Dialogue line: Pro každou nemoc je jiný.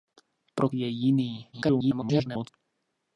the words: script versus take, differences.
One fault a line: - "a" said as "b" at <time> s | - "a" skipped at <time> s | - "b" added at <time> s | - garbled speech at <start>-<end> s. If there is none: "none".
- "každou nemoc" skipped at 0.7 s
- garbled speech at 1.5-2.5 s